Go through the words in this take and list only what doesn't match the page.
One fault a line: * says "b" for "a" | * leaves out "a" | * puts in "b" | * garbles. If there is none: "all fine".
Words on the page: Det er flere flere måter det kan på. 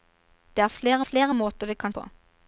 all fine